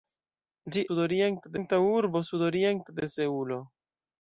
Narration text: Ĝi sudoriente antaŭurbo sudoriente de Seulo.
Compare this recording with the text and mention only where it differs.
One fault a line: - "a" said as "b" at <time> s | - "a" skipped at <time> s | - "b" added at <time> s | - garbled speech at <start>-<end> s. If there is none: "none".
none